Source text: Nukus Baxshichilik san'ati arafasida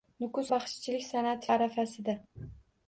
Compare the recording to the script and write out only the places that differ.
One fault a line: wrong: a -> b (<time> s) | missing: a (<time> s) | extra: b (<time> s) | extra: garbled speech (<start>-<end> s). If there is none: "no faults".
no faults